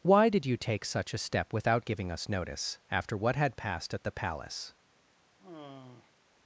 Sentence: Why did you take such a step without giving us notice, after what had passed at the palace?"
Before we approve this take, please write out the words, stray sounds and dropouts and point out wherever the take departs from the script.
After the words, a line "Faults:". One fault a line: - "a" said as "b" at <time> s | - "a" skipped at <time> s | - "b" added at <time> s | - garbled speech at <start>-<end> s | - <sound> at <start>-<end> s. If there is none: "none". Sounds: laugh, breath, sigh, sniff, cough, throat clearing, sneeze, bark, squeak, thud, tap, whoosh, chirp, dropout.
Why did you take such a step without giving us notice, after what had passed at the palace?"
Faults:
- sigh at 5.4-6.1 s